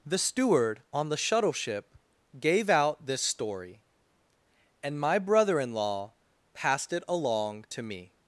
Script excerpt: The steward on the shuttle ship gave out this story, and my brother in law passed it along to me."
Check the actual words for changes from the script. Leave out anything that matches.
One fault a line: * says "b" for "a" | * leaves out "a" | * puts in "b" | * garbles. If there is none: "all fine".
all fine